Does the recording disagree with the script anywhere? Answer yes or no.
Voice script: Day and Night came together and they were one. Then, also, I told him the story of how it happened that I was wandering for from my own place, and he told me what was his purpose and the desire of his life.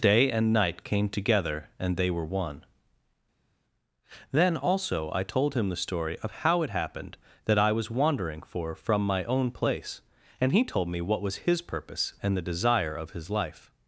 no